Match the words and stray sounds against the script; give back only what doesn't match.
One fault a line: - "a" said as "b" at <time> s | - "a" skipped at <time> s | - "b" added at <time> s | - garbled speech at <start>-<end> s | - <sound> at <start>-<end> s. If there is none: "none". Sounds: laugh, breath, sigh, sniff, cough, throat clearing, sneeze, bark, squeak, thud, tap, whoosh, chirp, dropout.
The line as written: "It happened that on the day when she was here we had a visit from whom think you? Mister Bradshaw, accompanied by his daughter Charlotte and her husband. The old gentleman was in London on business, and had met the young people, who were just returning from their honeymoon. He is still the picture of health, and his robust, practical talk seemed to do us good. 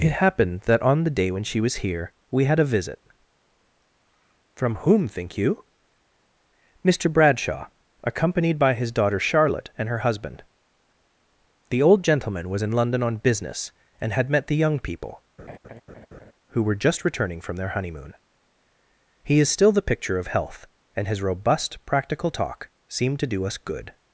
- laugh at 15.4-16.3 s